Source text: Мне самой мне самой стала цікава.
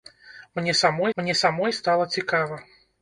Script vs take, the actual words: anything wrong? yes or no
no